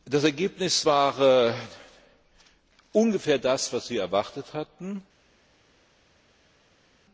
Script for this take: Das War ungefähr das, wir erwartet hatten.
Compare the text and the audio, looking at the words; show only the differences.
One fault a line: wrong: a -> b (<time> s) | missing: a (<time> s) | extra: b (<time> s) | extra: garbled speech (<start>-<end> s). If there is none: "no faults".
extra: Ergebnis (0.2 s)
extra: was (3.7 s)